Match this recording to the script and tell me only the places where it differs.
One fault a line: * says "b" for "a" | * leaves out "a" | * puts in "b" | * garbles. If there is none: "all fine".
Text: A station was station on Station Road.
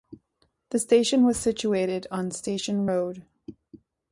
* says "The" for "A"
* says "situated" for "station"